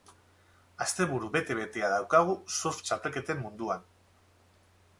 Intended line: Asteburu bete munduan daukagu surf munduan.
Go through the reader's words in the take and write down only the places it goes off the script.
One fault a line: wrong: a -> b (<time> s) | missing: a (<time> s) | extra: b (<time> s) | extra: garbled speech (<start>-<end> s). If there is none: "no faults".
wrong: munduan -> betea (1.6 s)
extra: txapelketen (2.8 s)